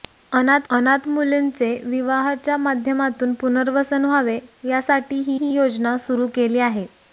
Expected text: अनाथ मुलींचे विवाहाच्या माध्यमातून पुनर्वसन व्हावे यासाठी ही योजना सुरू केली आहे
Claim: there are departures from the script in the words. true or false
true